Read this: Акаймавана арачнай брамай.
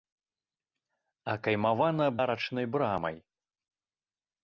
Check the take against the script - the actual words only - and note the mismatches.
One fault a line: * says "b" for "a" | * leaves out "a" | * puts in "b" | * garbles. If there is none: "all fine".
all fine